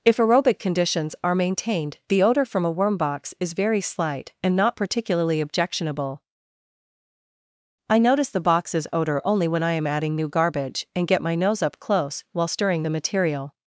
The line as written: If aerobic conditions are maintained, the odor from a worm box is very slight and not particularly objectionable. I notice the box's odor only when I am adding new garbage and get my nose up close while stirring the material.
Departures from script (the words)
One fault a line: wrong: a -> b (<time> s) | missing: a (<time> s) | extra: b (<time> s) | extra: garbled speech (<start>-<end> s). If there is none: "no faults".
no faults